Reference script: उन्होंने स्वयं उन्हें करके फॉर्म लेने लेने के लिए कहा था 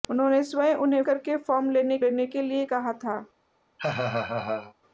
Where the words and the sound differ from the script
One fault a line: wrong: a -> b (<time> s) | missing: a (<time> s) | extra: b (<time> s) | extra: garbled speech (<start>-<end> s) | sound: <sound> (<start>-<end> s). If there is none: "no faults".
sound: laugh (3.8-4.7 s)